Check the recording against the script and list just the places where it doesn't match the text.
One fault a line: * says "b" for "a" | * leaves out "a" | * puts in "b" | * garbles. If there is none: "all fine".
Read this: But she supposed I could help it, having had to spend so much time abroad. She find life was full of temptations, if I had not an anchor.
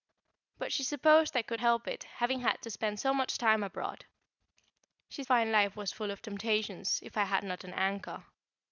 all fine